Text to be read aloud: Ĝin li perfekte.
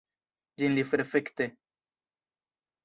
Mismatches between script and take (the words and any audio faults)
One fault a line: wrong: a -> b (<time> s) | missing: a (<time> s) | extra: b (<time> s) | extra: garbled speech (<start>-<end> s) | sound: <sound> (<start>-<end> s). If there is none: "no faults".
no faults